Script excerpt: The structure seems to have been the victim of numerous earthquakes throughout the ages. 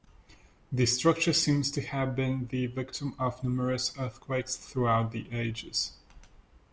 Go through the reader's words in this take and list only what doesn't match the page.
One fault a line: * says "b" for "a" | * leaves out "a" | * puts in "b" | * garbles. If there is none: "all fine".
all fine